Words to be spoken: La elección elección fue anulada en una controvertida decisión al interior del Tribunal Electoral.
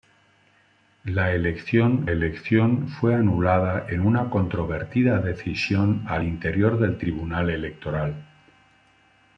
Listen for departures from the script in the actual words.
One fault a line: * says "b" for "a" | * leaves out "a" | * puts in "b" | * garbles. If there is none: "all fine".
all fine